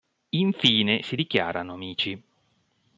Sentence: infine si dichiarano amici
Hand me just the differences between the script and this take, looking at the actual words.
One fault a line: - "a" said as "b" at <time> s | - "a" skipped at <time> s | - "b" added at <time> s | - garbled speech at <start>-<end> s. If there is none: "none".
none